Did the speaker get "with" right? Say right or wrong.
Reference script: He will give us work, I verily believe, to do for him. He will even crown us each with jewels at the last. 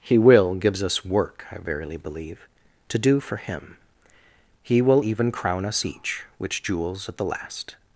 wrong